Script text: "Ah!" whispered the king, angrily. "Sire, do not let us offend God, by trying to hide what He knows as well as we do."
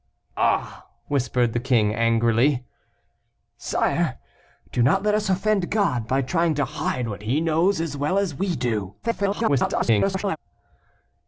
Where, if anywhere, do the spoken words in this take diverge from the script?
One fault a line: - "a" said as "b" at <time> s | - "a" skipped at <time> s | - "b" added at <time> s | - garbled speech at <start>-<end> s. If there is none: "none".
- garbled speech at 9.0-10.4 s